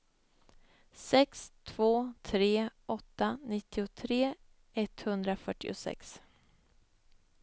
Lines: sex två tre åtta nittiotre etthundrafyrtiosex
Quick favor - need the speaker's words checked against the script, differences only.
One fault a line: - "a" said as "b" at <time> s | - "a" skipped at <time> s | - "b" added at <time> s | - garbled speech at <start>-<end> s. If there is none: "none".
none